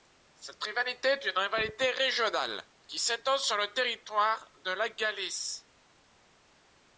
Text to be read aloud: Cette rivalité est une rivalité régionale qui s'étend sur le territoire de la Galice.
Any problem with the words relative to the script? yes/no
no